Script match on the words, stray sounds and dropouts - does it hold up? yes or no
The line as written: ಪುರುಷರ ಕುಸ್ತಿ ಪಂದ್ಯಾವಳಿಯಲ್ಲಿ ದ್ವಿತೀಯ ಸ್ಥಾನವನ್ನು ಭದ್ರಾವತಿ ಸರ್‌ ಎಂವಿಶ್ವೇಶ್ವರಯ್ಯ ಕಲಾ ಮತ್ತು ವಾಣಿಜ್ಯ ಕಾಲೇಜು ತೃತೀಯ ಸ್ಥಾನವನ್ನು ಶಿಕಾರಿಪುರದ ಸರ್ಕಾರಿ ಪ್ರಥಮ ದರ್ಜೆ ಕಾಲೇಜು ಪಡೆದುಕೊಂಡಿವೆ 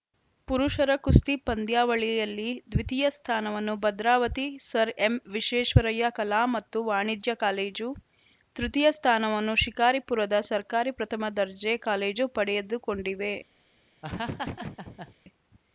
no